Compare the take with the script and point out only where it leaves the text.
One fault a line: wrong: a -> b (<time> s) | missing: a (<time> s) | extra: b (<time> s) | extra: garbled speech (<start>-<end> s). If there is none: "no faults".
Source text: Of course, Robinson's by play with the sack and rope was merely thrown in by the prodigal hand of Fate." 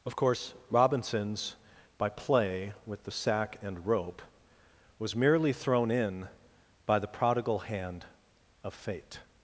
no faults